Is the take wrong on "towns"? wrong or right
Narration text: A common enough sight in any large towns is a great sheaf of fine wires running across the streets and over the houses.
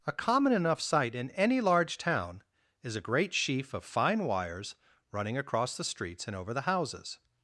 wrong